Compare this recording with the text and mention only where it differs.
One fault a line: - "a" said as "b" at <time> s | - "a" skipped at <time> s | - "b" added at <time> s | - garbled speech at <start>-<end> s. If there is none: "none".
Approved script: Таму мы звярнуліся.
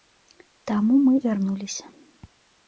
none